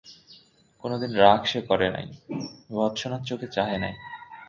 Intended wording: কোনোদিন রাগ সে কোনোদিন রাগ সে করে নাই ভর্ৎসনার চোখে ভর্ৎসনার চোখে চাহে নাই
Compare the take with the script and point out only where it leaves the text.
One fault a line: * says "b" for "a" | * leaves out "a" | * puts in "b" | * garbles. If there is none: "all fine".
* leaves out "কোনোদিন রাগ সে"
* leaves out "ভর্ৎসনার চোখে"